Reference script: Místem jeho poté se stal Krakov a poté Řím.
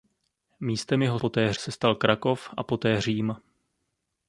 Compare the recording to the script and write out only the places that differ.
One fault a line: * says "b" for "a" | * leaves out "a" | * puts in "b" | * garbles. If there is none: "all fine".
all fine